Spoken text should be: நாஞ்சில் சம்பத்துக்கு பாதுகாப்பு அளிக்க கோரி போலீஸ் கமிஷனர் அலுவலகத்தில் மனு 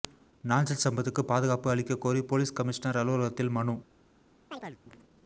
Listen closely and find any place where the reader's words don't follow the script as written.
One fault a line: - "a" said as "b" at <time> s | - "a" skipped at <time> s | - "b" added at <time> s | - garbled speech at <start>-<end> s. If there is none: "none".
none